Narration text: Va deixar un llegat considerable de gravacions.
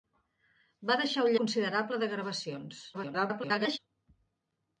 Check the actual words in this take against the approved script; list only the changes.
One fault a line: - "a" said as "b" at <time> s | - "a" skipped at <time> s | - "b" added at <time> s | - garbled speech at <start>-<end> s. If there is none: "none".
- "llegat" skipped at 1.4 s
- garbled speech at 2.9-3.8 s